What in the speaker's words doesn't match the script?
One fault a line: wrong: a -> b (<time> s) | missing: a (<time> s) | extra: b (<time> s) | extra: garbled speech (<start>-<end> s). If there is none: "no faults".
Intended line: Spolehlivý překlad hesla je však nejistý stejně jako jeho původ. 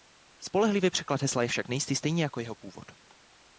no faults